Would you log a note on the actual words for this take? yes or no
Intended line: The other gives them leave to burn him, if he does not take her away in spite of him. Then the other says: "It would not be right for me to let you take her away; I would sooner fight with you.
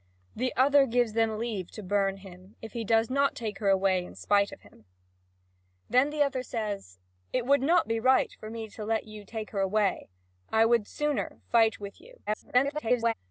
yes